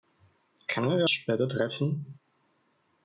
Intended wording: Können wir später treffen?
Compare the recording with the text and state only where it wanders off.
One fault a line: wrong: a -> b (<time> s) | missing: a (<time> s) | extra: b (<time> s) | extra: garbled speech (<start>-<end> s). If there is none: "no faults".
no faults